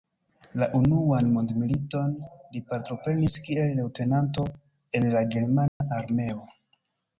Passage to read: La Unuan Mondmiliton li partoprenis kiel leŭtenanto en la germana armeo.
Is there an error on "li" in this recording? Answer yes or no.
no